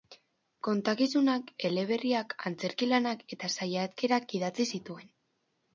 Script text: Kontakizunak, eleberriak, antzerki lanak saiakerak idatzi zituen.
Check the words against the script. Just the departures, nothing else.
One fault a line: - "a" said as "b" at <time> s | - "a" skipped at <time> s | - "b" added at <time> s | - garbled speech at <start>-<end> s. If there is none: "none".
- "eta" added at 3.4 s